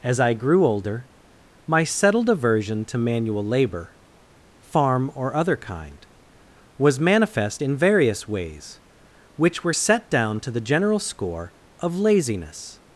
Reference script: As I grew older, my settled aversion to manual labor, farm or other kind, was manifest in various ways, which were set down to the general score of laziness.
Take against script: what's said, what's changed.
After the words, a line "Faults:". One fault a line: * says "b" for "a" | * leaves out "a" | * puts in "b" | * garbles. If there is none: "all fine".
As I grew older, my settled aversion to manual labor, farm or other kind, was manifest in various ways, which were set down to the general score of laziness.
Faults:
all fine